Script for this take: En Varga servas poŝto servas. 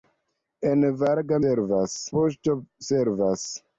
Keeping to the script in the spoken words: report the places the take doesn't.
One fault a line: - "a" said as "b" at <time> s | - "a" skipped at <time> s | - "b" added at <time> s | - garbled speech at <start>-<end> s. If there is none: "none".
none